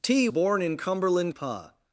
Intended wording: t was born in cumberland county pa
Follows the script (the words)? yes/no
no